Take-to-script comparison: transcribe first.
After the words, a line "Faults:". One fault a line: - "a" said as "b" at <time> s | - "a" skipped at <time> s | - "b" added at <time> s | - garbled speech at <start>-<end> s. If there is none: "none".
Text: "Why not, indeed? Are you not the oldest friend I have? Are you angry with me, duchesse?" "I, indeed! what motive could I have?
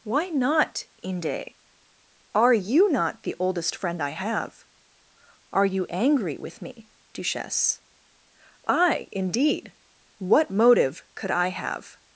"Why not, inde? Are you not the oldest friend I have? Are you angry with me, duchesse?" "I, indeed! what motive could I have?
Faults:
- "indeed" said as "inde" at 1.0 s